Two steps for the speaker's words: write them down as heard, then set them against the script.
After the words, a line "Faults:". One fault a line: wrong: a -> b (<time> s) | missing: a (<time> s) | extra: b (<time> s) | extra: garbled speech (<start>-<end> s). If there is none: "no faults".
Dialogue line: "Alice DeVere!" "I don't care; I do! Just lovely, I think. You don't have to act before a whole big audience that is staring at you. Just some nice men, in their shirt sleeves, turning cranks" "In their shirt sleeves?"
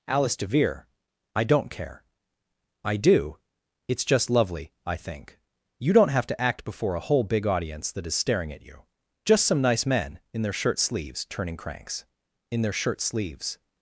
"Alice DeVere!" "I don't care; I do! It's just lovely, I think. You don't have to act before a whole big audience that is staring at you. Just some nice men, in their shirt sleeves, turning cranks" "In their shirt sleeves?"
Faults:
extra: It's (3.9 s)